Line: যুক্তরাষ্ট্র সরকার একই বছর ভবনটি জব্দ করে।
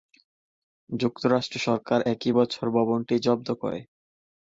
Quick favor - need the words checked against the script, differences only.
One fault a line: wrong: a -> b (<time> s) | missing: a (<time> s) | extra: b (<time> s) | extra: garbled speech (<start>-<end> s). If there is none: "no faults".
no faults